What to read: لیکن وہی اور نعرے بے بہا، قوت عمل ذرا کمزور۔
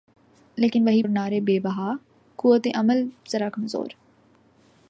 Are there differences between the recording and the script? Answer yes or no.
no